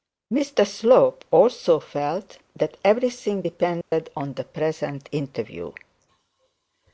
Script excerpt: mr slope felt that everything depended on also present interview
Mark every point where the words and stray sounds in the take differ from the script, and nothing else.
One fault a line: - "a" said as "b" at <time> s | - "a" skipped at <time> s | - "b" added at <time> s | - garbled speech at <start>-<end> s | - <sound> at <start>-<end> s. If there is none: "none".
- "also" added at 1.3 s
- dropout at 3.8-3.9 s
- "also" said as "the" at 4.3 s